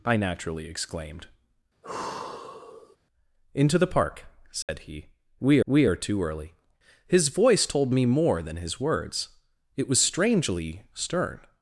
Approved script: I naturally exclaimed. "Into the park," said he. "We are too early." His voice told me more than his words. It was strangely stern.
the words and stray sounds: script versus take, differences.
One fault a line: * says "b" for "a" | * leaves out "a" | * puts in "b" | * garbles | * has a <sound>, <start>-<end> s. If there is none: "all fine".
* has a sigh, 1.8-3.0 s
* has a dropout, 4.6-4.7 s
* puts in "we"